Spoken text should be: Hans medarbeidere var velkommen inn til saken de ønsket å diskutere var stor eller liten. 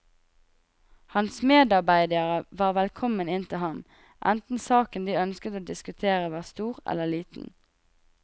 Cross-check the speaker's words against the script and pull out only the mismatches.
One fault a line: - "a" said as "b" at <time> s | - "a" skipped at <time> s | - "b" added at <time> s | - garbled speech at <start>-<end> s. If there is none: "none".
- "ham enten" added at 3.6 s